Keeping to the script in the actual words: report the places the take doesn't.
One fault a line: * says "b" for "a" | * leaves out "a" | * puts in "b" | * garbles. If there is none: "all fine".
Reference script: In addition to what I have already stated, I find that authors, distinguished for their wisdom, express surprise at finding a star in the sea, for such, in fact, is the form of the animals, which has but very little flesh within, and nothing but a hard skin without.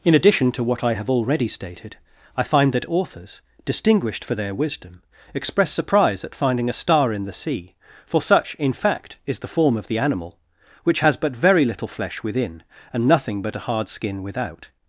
* says "animal" for "animals"